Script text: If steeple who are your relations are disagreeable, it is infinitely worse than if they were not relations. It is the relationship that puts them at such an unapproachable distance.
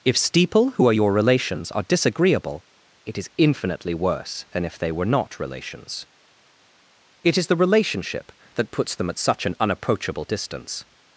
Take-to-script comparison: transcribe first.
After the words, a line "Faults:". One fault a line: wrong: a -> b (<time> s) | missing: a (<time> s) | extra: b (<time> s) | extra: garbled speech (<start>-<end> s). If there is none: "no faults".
If steeple who are your relations are disagreeable, it is infinitely worse than if they were not relations. It is the relationship that puts them at such an unapproachable distance.
Faults:
no faults